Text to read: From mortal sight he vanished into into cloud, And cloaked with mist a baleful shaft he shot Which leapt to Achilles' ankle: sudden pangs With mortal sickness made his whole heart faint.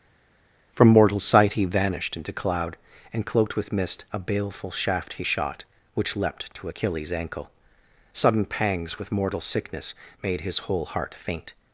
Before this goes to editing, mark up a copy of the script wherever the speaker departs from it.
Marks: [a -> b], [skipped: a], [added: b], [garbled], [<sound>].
From mortal sight he vanished into [skipped: into] cloud, And cloaked with mist a baleful shaft he shot Which leapt to Achilles' ankle: sudden pangs With mortal sickness made his whole heart faint.